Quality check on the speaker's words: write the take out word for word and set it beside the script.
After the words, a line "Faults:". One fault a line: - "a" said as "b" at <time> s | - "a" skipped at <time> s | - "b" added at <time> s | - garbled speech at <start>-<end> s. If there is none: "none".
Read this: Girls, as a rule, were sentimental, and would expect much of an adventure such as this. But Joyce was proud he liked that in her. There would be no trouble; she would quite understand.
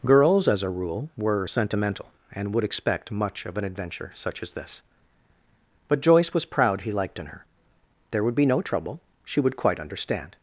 Girls, as a rule, were sentimental, and would expect much of an adventure such as this. But Joyce was proud he liked in her. There would be no trouble; she would quite understand.
Faults:
- "that" skipped at 7.2 s